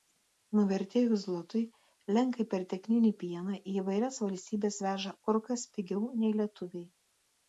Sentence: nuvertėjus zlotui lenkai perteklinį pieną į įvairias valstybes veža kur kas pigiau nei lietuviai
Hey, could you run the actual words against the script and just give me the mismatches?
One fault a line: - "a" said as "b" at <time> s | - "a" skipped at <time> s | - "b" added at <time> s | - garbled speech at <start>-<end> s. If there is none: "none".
none